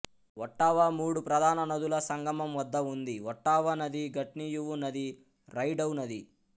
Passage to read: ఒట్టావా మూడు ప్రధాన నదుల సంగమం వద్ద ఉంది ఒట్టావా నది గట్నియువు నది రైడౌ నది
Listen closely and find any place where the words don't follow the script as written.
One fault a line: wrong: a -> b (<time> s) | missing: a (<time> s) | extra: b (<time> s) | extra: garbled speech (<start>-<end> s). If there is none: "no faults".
no faults